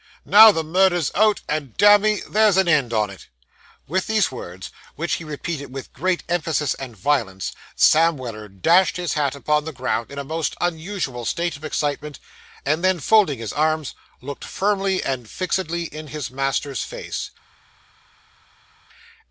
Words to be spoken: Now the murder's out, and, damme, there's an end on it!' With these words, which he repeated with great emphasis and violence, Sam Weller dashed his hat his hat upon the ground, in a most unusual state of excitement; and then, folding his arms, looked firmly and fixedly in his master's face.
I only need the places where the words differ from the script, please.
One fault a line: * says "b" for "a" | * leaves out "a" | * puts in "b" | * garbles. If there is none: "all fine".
* leaves out "his hat"